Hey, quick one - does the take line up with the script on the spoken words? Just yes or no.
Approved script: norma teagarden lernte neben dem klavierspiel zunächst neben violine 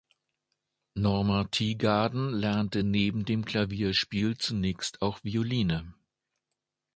no